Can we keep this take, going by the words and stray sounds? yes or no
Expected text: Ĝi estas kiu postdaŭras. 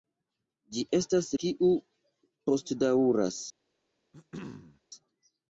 no